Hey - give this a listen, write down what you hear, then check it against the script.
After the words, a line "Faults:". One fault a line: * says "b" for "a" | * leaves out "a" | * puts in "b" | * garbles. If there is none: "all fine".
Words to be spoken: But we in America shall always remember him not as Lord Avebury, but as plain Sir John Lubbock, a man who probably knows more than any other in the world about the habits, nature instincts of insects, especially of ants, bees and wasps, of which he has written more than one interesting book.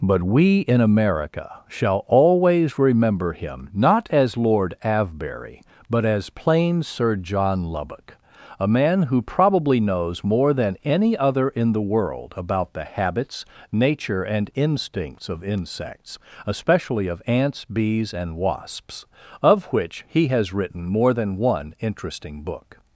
But we in America shall always remember him not as Lord Avebury, but as plain Sir John Lubbock, a man who probably knows more than any other in the world about the habits, nature and instincts of insects, especially of ants, bees and wasps, of which he has written more than one interesting book.
Faults:
* puts in "and"